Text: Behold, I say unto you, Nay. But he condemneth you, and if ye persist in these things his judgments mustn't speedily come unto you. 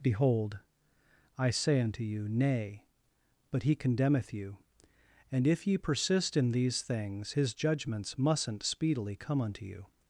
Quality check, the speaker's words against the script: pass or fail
pass